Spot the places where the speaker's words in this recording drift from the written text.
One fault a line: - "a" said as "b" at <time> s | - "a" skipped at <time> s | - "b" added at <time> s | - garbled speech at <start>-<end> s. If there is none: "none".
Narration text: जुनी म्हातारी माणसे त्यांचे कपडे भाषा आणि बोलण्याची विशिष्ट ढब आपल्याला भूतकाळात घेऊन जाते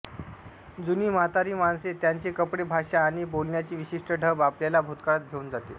none